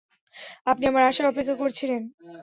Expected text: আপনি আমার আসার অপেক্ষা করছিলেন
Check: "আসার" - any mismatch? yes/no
no